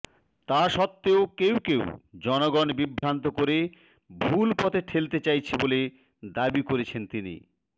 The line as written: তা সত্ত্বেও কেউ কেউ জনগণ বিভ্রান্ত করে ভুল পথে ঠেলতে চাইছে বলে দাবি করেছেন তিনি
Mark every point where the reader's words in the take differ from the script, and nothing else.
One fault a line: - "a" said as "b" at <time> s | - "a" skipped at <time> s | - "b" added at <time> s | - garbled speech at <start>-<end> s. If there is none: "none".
none